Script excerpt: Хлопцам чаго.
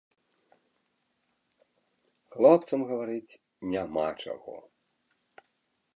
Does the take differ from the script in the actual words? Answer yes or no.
yes